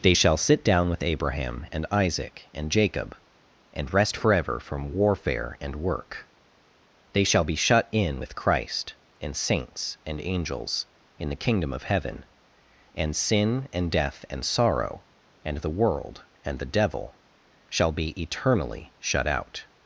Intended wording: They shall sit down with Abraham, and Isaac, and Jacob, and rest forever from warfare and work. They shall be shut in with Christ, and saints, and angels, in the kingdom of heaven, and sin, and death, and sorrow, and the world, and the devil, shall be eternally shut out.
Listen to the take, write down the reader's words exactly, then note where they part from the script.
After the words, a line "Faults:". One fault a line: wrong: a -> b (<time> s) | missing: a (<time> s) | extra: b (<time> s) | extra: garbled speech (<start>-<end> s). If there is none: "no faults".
They shall sit down with Abraham, and Isaac, and Jacob, and rest forever from warfare and work. They shall be shut in with Christ, and saints, and angels, in the kingdom of heaven, and sin, and death, and sorrow, and the world, and the devil, shall be eternally shut out.
Faults:
no faults